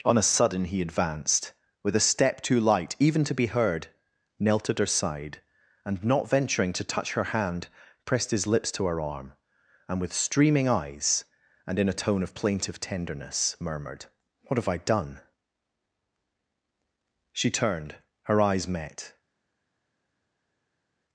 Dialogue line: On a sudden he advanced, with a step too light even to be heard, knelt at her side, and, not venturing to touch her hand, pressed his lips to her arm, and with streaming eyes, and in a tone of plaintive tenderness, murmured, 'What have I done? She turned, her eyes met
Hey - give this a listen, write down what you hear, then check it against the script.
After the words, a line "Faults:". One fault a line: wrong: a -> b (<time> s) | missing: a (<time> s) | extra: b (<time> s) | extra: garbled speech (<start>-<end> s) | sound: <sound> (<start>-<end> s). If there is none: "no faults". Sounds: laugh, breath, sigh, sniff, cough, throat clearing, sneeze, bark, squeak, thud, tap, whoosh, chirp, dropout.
On a sudden he advanced, with a step too light even to be heard, knelt at her side, and, not venturing to touch her hand, pressed his lips to her arm, and with streaming eyes, and in a tone of plaintive tenderness, murmured, 'What have I done? She turned, her eyes met
Faults:
no faults